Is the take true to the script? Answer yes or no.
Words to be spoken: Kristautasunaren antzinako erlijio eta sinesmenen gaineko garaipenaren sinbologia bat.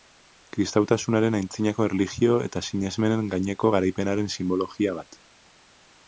yes